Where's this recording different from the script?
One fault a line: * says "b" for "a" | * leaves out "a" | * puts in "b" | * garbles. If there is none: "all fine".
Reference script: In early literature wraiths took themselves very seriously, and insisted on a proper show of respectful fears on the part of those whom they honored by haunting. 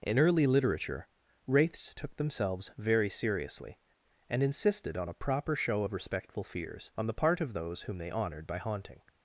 all fine